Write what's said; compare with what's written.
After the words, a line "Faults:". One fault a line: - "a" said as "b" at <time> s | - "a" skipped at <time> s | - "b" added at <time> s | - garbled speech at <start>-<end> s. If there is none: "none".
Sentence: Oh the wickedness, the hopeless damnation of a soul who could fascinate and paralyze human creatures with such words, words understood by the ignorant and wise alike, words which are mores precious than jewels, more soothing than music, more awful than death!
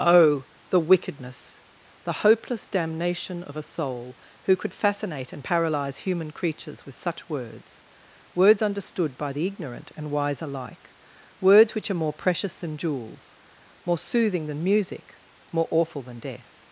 Oh the wickedness, the hopeless damnation of a soul who could fascinate and paralyze human creatures with such words, words understood by the ignorant and wise alike, words which are more precious than jewels, more soothing than music, more awful than death!
Faults:
- "mores" said as "more" at 12.0 s